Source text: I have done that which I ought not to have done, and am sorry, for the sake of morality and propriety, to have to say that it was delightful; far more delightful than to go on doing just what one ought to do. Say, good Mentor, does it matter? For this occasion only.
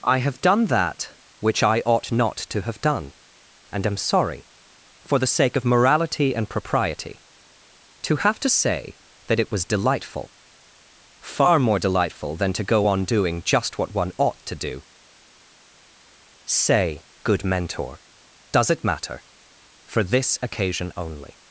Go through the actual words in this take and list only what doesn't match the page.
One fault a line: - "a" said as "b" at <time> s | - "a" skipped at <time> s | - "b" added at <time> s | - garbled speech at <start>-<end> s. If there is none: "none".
none